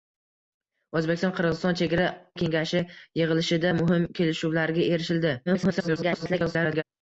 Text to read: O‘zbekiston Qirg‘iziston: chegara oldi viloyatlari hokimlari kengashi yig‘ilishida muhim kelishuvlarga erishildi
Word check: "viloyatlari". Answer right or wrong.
wrong